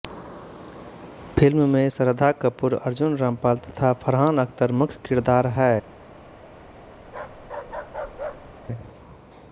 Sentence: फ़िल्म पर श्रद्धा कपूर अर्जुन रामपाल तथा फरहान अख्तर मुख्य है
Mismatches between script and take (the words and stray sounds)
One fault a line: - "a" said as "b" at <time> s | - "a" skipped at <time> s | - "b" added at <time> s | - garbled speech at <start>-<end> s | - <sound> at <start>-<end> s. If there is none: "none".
- "पर" said as "में" at 1.7 s
- "किरदार" added at 5.1 s
- bark at 7.0-8.5 s